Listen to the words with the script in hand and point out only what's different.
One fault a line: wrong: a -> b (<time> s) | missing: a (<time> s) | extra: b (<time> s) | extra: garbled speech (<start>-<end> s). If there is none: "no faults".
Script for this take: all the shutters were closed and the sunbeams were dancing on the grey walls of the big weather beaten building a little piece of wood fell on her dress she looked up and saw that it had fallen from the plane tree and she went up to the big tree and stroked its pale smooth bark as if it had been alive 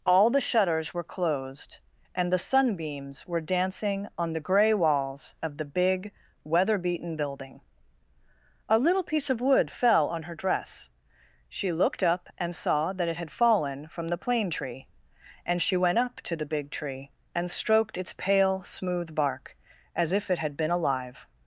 no faults